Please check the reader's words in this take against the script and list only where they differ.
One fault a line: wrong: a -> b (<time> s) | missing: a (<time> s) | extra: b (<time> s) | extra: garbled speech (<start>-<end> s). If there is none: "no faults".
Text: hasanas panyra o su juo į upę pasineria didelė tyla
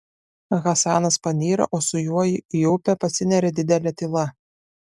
no faults